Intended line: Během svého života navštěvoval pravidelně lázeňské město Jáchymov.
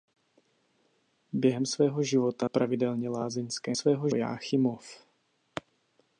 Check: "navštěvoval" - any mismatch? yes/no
yes